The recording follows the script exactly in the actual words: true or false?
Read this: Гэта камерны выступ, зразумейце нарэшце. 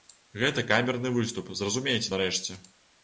true